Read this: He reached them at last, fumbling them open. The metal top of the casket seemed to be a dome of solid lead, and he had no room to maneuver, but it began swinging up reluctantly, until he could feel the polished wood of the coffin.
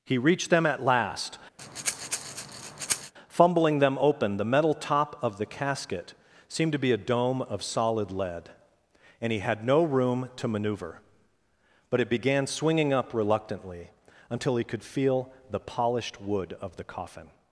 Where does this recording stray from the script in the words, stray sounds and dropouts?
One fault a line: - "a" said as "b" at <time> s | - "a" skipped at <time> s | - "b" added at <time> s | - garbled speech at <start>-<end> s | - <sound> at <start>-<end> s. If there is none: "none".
- breath at 1.6-3.1 s